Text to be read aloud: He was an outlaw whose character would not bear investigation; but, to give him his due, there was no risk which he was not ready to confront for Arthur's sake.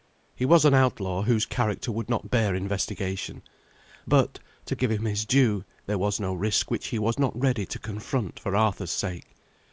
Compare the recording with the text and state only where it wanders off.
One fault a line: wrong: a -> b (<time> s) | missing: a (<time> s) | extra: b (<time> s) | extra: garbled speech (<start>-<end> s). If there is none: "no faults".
no faults